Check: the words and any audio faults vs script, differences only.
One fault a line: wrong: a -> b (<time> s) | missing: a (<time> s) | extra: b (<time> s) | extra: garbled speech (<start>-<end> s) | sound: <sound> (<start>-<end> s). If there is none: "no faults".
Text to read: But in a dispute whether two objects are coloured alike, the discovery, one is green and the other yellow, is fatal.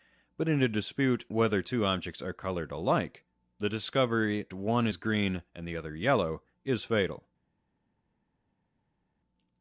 no faults